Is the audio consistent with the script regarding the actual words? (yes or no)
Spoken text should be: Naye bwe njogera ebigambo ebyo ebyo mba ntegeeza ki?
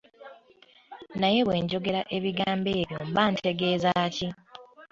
no